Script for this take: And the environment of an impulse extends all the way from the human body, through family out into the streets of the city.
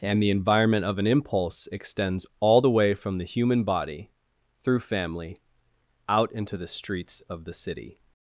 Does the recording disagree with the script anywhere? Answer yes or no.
no